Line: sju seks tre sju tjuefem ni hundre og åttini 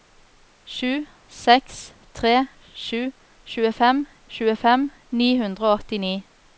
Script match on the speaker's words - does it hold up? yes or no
no